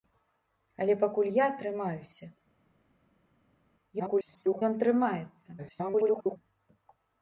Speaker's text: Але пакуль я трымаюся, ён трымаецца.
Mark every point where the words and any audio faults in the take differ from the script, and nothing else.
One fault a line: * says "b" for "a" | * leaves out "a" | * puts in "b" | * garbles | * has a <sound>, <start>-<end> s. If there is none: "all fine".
* garbles
* garbles